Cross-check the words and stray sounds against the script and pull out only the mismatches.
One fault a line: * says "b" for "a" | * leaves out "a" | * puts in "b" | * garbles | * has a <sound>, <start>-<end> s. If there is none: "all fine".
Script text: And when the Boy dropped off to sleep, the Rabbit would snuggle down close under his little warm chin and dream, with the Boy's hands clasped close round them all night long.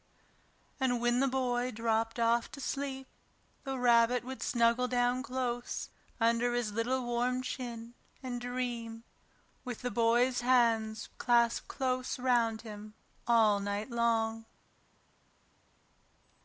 * says "him" for "them"